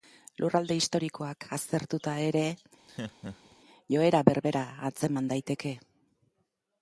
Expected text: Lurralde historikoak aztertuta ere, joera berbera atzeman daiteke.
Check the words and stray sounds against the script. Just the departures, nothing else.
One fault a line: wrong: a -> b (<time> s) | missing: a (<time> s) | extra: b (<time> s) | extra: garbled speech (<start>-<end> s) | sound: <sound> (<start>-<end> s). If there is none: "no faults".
sound: laugh (2.9-3.6 s)